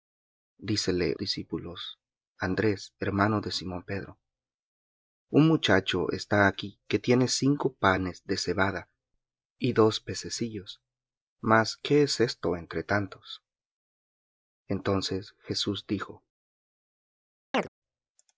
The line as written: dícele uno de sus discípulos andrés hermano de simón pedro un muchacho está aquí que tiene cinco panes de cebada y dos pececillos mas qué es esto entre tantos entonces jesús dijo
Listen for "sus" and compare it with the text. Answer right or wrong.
wrong